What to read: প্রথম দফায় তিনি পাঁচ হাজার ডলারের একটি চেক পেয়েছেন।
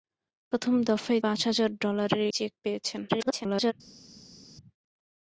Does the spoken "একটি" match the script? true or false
false